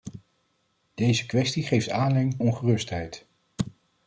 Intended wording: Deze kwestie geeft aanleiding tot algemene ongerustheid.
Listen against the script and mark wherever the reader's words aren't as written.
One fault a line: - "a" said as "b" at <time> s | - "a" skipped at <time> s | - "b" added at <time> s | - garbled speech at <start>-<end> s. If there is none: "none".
- "tot algemene" skipped at 2.4 s